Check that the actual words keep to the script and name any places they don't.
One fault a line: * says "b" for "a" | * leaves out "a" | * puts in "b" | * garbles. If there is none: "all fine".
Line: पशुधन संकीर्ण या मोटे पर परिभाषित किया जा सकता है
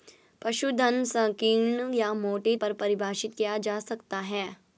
all fine